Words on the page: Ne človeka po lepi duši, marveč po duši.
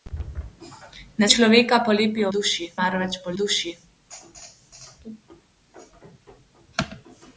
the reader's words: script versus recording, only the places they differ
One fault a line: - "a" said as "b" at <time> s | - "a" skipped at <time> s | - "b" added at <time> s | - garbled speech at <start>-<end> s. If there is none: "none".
none